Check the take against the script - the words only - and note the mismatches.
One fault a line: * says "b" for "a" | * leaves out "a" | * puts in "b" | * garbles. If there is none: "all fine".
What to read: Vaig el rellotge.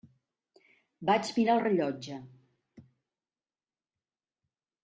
* puts in "mirar"